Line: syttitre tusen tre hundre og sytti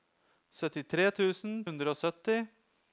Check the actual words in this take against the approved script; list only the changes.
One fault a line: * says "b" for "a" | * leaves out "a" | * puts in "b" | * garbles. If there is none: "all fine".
* leaves out "tre"